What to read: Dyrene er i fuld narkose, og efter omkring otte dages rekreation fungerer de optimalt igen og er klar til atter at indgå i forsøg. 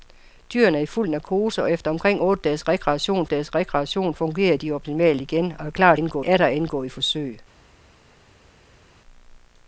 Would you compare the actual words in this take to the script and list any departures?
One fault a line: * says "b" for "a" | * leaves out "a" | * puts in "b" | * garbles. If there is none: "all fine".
* puts in "dages rekreation"
* says "indgå" for "til"